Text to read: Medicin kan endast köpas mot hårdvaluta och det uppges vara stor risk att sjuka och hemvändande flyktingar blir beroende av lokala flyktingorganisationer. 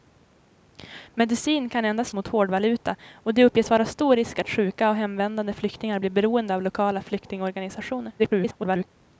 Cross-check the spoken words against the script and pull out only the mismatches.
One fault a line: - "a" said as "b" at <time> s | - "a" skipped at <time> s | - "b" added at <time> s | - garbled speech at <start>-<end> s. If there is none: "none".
- "köpas" skipped at 2.1 s
- garbled speech at 8.2-8.9 s